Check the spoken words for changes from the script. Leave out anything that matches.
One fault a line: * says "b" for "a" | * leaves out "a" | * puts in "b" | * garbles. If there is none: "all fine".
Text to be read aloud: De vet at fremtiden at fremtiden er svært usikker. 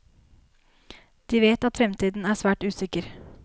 * leaves out "at fremtiden"